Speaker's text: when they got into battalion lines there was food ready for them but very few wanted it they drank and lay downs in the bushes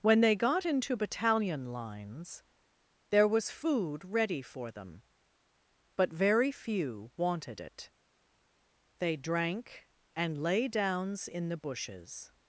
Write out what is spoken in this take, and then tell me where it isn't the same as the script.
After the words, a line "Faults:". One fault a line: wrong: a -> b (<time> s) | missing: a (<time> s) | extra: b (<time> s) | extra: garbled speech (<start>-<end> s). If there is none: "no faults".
when they got into battalion lines there was food ready for them but very few wanted it they drank and lay downs in the bushes
Faults:
no faults